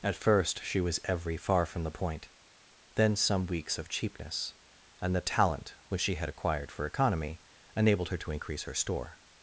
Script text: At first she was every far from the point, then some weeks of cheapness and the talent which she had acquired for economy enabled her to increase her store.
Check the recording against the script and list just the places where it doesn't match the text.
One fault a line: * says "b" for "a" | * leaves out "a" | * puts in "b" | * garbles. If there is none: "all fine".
all fine